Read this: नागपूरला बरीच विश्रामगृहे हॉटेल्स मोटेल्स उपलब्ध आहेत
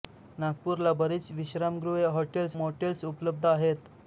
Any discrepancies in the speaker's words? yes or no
no